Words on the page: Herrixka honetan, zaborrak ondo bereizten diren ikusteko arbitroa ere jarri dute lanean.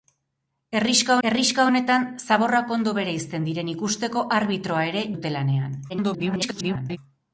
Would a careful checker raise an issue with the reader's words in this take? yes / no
yes